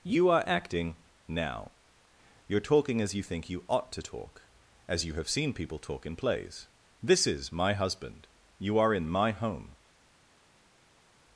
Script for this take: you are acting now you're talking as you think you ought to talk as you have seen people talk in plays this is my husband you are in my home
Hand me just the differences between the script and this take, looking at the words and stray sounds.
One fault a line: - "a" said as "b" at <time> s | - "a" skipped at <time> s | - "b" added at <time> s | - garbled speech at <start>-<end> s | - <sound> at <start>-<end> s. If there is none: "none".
none